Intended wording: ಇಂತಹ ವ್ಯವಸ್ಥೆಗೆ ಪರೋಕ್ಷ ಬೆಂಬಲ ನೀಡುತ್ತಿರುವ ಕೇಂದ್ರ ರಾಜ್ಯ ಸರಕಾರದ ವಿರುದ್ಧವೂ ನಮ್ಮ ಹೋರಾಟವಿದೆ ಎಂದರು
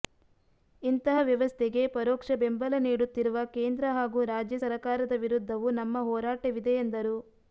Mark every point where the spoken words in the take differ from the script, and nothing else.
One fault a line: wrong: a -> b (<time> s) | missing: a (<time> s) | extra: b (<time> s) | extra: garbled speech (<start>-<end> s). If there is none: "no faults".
extra: ಹಾಗೂ (3.9 s)